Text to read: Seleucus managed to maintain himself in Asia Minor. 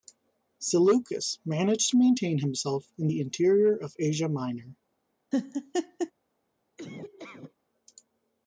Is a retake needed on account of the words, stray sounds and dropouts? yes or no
yes